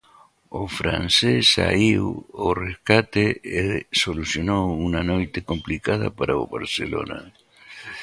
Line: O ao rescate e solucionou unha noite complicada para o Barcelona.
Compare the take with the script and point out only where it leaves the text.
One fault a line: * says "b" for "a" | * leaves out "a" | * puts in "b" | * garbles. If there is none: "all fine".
* puts in "francés saíu"